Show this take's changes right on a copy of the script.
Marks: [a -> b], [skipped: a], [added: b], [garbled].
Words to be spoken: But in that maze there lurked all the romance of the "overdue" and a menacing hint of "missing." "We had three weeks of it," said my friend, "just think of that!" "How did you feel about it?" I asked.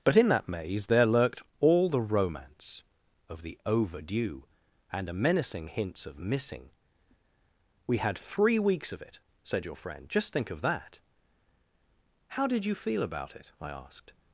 But in that maze there lurked all the romance of the "overdue" and a menacing [hint -> hints] of "missing." "We had three weeks of it," said [my -> your] friend, "just think of that!" "How did you feel about it?" I asked.